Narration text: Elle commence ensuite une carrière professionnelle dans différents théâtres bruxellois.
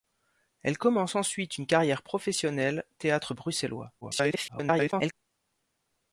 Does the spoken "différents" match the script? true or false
false